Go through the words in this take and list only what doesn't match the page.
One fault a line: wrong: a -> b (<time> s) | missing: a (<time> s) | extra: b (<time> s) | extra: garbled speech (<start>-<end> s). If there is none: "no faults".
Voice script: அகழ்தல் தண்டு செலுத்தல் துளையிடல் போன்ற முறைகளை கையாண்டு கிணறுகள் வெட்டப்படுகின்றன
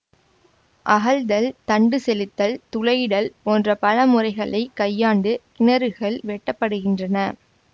extra: பல (3.8 s)